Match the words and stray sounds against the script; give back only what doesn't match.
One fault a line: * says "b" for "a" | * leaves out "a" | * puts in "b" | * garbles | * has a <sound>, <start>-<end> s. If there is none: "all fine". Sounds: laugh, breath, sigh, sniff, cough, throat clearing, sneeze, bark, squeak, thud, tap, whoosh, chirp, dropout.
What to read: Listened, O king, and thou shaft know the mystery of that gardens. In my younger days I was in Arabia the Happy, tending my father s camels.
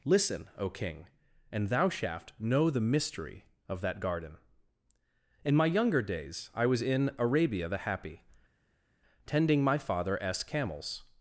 * says "Listen" for "Listened"
* says "garden" for "gardens"